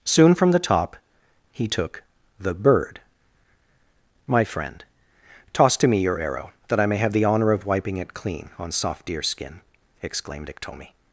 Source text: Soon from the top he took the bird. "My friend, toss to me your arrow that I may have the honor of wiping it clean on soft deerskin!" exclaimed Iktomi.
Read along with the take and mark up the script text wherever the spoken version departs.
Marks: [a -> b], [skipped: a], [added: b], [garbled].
Soon from the top he took the bird. "My friend, toss to me your arrow that I may have the honor of wiping it clean on soft deerskin!" exclaimed Iktomi.